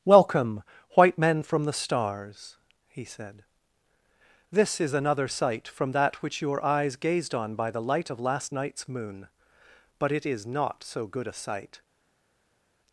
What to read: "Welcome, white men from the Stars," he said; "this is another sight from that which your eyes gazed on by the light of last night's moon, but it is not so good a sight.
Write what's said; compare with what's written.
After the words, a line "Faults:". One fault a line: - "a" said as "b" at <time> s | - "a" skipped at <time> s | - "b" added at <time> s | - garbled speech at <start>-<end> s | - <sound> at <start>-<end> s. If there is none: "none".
"Welcome, white men from the Stars," he said; "this is another sight from that which your eyes gazed on by the light of last night's moon, but it is not so good a sight.
Faults:
none